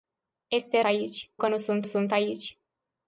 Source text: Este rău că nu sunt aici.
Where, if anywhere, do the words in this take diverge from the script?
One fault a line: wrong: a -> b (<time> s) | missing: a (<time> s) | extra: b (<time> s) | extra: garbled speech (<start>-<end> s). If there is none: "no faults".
wrong: rău -> aici (0.8 s)
extra: sunt (1.8 s)